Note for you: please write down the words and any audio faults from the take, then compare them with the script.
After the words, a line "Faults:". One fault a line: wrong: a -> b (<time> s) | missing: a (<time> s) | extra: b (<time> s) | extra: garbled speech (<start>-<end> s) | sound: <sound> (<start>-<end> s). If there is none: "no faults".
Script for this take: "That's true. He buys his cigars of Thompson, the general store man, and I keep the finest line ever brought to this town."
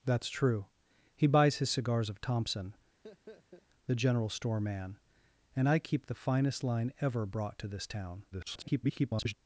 "That's true. He buys his cigars of Thompson, the general store man, and I keep the finest line ever brought to this town." [garbled]
Faults:
sound: laugh (3.0-3.7 s)
extra: garbled speech (8.3-9.3 s)